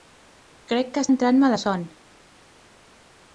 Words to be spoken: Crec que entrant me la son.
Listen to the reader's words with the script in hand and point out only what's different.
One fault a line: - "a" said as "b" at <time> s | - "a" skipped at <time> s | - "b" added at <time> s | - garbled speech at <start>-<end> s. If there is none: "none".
none